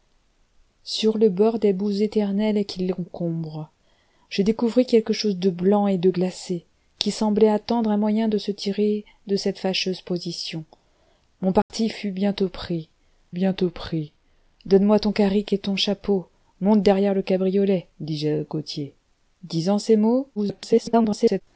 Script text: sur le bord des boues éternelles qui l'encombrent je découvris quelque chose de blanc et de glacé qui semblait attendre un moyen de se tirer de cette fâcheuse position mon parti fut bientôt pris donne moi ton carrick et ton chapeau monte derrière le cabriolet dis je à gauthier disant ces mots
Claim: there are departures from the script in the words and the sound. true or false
true